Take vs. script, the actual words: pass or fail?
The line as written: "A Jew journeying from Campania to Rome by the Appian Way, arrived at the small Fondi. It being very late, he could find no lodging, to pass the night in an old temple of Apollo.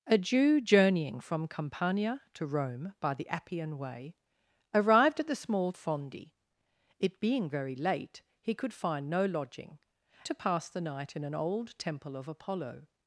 pass